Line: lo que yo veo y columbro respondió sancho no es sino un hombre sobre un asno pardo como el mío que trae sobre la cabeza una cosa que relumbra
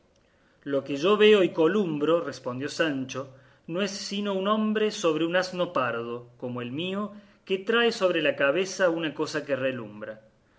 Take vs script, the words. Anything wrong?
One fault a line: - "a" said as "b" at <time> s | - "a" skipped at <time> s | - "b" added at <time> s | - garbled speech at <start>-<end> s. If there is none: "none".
none